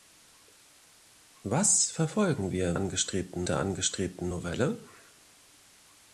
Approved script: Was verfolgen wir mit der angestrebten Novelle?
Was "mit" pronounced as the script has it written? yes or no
no